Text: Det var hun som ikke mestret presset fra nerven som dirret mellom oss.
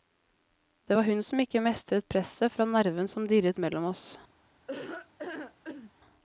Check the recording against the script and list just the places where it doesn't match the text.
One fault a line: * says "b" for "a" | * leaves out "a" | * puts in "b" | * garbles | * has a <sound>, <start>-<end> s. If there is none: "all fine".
* has a laugh, 4.7-5.9 s